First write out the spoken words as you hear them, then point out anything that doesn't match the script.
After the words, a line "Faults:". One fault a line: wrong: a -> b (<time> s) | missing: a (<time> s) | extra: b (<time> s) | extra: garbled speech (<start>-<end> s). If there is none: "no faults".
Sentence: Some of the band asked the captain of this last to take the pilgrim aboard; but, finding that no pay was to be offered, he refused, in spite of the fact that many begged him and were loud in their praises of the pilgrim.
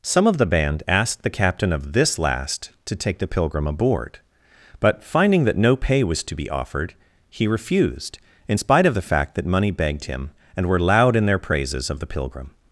Some of the band asked the captain of this last to take the pilgrim aboard; but, finding that no pay was to be offered, he refused, in spite of the fact that money begged him and were loud in their praises of the pilgrim.
Faults:
wrong: many -> money (9.4 s)